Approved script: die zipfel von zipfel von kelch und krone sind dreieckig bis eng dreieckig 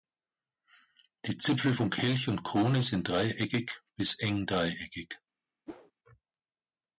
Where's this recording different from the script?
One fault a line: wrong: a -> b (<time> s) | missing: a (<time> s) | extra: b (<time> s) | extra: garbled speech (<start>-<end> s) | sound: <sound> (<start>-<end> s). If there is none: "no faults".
missing: zipfel von (1.9 s)
sound: whoosh (5.7-5.9 s)